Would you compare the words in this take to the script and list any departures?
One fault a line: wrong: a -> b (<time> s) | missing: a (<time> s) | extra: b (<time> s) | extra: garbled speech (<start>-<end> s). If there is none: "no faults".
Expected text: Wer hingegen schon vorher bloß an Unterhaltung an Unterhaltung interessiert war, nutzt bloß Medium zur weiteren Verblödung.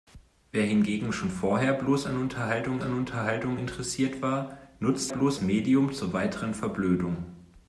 no faults